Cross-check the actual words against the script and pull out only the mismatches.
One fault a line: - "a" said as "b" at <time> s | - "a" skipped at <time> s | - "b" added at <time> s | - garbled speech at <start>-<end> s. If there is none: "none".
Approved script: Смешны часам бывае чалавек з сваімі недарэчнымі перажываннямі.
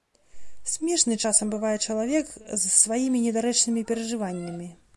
none